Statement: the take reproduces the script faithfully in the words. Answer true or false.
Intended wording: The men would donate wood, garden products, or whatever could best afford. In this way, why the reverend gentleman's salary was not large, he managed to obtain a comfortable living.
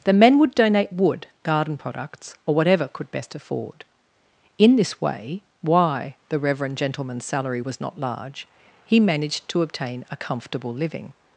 true